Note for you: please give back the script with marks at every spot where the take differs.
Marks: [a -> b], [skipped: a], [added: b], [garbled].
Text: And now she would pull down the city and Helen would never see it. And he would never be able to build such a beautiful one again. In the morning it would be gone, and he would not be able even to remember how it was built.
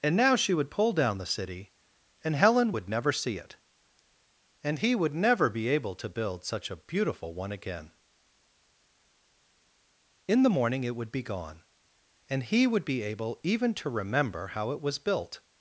And now she would pull down the city and Helen would never see it. And he would never be able to build such a beautiful one again. In the morning it would be gone, and he would [skipped: not] be able even to remember how it was built.